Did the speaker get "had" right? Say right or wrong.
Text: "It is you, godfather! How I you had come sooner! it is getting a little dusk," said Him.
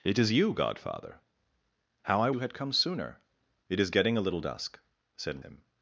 right